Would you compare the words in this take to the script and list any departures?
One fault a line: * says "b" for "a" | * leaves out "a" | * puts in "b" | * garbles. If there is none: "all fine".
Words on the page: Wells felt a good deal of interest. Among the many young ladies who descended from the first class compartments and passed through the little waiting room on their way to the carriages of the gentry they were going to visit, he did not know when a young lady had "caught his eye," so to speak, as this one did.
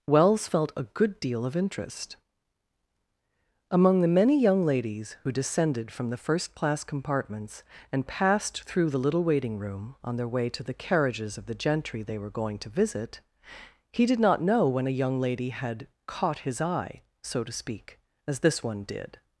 all fine